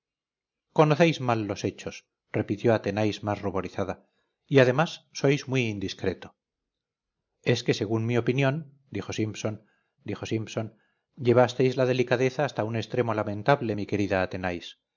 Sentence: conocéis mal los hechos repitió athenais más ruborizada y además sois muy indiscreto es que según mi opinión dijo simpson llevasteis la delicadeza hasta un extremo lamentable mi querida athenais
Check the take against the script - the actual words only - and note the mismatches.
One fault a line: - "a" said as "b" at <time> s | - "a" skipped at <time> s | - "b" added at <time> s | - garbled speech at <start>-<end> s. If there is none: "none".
- "dijo simpson" added at 10.0 s